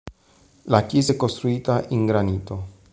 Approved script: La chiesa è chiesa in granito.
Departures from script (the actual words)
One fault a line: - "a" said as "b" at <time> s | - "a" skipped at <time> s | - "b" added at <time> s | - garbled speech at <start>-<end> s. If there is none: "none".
- "chiesa" said as "costruita" at 1.1 s